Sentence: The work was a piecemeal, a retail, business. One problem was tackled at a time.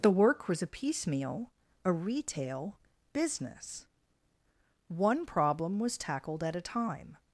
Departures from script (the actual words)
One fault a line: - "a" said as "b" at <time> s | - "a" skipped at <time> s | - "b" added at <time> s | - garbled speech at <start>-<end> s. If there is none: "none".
none